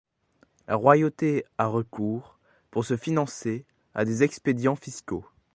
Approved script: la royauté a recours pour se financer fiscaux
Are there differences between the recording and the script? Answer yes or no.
yes